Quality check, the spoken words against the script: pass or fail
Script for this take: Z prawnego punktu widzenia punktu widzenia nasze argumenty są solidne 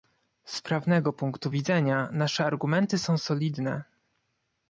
fail